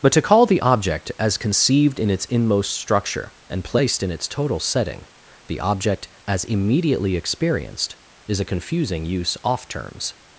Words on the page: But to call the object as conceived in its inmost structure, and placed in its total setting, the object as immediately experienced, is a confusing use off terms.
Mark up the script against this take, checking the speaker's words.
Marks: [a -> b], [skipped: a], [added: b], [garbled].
But to call the object as conceived in its inmost structure, and placed in its total setting, the object as immediately experienced, is a confusing use off terms.